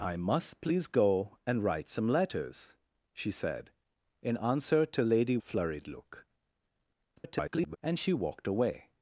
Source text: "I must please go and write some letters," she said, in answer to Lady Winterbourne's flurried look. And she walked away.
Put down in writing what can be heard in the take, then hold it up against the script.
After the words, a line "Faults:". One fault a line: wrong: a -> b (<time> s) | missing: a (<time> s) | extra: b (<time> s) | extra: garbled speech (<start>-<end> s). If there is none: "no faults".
"I must please go and write some letters," she said, in answer to Lady Flurried look. [garbled] And she walked away.
Faults:
missing: Winterbourne's (5.4 s)
extra: garbled speech (7.2-7.8 s)